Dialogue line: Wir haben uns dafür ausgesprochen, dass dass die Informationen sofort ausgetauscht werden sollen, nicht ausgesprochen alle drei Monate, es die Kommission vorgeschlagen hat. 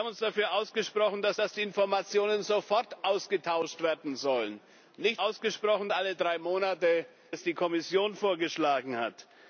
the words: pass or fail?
pass